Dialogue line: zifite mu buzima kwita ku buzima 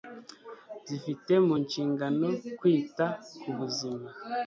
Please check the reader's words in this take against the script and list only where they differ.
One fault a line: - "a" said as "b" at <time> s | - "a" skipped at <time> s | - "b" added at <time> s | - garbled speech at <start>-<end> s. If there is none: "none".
- "buzima" said as "nshingano" at 1.6 s